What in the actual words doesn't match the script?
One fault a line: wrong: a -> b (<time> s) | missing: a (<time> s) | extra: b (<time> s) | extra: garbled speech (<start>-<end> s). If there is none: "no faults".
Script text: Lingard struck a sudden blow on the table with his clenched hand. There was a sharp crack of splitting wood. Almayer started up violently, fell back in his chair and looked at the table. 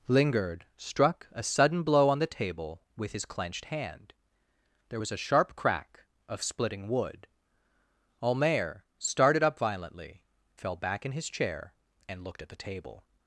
no faults